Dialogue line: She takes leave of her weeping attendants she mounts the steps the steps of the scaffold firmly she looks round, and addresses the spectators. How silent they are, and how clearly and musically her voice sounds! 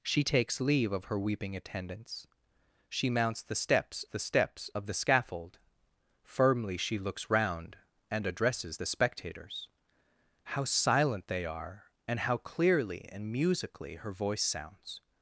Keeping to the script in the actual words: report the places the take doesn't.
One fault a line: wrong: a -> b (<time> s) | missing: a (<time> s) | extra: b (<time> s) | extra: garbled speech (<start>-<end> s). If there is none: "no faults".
no faults